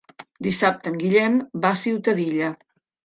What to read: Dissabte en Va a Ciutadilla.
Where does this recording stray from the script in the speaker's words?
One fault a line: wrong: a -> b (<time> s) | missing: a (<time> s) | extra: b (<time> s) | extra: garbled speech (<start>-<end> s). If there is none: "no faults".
extra: Guillem (1.0 s)